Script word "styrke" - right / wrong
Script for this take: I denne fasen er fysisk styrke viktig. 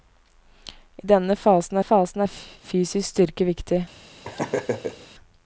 right